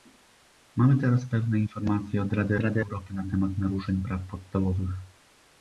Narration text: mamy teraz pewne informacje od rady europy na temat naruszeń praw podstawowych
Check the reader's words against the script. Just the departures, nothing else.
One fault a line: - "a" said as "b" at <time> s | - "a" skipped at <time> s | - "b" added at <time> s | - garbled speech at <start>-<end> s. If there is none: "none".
- "rady" added at 2.6 s